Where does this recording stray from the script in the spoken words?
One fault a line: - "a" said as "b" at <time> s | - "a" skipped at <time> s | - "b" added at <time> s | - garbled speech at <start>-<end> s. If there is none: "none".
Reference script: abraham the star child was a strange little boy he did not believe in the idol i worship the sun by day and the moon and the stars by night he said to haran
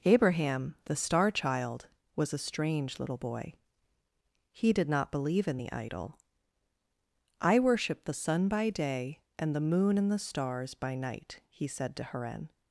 none